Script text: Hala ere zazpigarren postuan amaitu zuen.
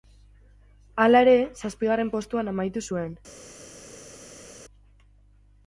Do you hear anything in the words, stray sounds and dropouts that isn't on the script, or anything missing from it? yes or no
no